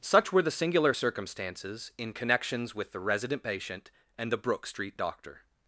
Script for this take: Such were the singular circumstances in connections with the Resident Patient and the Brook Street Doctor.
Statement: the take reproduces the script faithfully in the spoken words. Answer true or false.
true